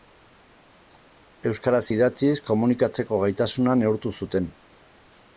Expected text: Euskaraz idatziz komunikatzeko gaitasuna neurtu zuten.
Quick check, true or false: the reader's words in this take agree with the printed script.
true